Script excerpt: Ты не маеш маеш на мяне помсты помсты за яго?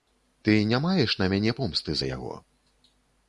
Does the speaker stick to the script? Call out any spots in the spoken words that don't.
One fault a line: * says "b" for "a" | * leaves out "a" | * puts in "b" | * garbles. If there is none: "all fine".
* leaves out "маеш"
* leaves out "помсты"